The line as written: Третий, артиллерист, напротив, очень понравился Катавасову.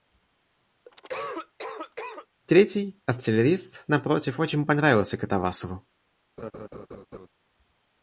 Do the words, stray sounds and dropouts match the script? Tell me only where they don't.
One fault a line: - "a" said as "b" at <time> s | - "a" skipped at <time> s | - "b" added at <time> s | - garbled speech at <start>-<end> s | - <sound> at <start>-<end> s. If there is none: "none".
- cough at 0.8-2.3 s
- laugh at 6.4-7.3 s